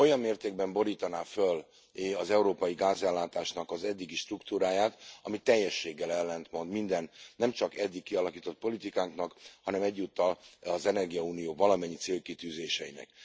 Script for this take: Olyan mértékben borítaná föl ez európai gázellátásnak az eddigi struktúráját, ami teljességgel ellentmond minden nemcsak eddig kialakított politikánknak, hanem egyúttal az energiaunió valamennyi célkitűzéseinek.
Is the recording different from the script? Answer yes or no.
yes